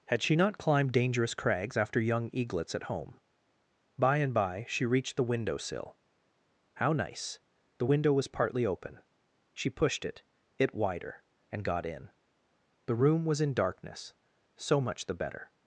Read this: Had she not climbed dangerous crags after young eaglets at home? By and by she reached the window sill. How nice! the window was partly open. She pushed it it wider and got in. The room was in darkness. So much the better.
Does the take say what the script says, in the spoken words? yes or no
yes